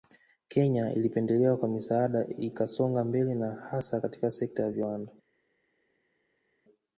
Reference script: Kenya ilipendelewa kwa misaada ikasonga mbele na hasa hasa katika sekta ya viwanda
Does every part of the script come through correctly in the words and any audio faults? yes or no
no